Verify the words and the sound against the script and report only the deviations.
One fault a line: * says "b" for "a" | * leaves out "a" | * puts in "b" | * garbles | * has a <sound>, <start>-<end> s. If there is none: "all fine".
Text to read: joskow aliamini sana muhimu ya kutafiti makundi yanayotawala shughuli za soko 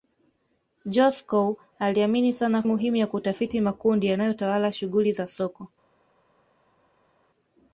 all fine